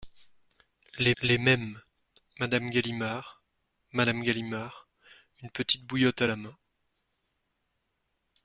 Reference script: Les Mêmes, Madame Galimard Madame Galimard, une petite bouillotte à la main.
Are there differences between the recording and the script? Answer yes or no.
yes